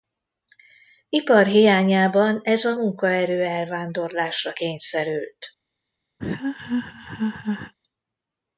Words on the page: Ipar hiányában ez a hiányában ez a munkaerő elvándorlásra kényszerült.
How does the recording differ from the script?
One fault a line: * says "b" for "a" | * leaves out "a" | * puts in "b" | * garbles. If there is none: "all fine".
* leaves out "hiányában ez a"